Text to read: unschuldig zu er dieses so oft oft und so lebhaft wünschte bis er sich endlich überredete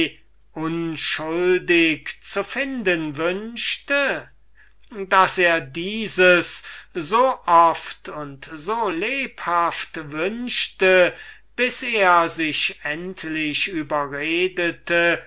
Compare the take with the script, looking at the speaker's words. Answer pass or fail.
fail